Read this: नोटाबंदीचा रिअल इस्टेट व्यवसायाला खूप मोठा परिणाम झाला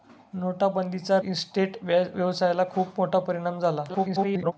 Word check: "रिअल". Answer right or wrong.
wrong